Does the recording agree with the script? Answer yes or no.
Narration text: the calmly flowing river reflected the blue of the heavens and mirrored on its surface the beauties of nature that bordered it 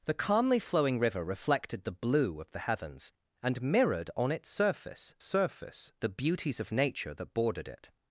no